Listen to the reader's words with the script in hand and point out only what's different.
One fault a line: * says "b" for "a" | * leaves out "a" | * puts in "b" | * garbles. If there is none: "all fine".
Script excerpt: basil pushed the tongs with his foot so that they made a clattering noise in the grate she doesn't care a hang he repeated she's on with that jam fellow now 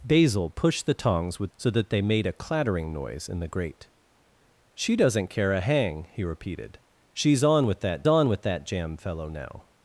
* leaves out "his foot"
* puts in "on with that"